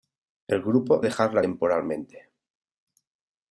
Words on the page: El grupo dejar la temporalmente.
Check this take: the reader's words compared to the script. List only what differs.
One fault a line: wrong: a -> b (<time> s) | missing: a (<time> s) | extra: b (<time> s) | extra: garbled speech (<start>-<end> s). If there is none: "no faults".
no faults